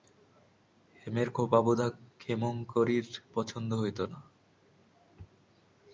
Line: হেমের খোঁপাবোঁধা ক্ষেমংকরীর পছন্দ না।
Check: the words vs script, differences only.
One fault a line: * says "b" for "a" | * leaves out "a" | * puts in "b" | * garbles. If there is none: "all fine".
* puts in "হইত"